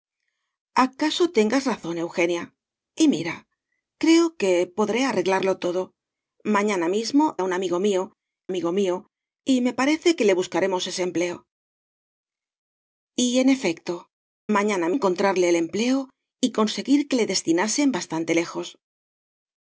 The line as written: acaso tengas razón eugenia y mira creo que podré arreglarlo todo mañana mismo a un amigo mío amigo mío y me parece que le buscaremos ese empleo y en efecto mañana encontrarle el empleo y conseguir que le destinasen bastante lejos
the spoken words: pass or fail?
pass